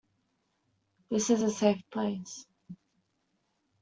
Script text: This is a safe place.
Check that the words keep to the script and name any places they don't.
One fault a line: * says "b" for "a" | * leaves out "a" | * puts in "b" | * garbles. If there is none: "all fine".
all fine